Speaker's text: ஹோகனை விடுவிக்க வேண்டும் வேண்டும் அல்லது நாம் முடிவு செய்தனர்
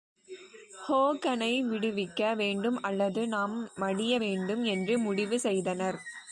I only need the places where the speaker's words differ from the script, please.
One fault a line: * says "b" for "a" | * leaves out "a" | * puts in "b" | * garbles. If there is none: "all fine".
* leaves out "வேண்டும்"
* puts in "மடிய வேண்டும் என்று"